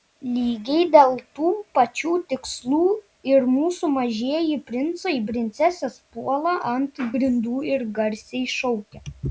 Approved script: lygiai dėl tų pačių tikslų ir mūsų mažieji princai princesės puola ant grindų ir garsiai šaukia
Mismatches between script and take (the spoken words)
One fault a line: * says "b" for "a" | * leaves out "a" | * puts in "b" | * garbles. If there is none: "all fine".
all fine